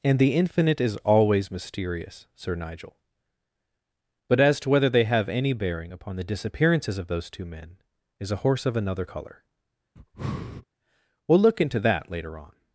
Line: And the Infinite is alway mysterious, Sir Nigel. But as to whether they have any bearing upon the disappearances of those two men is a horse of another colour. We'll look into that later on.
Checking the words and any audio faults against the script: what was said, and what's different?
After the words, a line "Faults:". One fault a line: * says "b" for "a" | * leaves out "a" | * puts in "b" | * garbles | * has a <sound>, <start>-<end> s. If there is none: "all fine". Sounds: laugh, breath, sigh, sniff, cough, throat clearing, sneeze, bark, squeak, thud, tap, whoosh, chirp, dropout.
And the Infinite is always mysterious, Sir Nigel. But as to whether they have any bearing upon the disappearances of those two men is a horse of another colour. We'll look into that later on.
Faults:
* says "always" for "alway"
* has a breath, 10.0-10.7 s